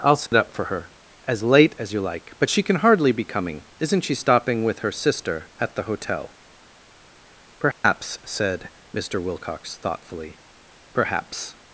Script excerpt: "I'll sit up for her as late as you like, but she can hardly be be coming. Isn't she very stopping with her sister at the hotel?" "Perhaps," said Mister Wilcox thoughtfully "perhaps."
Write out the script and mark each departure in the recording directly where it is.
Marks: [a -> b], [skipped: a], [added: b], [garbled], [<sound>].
"I'll sit [dropout] up for her as late as you like, but she can hardly be [skipped: be] coming. Isn't she [skipped: very] stopping with her sister at the hotel?" "Perhaps," [dropout] said Mister Wilcox thoughtfully "perhaps."